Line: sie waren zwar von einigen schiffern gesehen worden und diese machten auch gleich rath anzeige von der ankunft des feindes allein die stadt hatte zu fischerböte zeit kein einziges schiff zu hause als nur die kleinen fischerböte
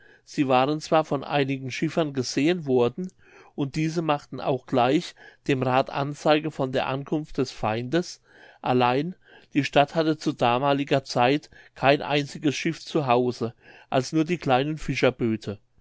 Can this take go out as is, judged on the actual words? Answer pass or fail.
fail